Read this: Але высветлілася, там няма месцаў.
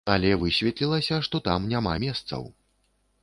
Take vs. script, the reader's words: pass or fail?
fail